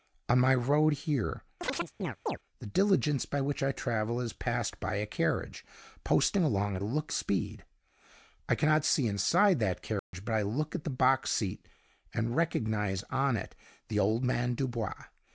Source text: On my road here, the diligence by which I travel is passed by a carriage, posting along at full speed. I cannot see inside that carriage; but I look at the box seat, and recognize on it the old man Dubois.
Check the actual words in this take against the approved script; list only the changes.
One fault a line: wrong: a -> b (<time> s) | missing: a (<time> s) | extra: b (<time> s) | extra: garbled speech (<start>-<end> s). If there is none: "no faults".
wrong: full -> look (6.8 s)